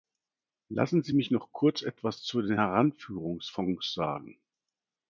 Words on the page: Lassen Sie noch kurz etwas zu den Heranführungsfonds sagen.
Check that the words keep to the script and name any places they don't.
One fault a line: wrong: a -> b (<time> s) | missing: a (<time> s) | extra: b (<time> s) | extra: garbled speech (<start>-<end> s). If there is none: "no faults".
extra: mich (1.1 s)